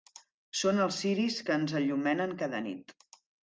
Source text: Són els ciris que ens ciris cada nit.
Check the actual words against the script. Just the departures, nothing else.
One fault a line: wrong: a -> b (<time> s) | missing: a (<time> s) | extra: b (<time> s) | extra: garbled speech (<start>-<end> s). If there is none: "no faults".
wrong: ciris -> enllumenen (1.8 s)